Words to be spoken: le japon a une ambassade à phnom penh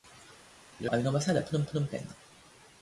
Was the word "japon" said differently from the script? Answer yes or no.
yes